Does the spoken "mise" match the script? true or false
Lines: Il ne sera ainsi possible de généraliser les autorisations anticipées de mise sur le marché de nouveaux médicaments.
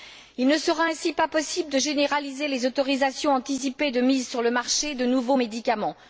true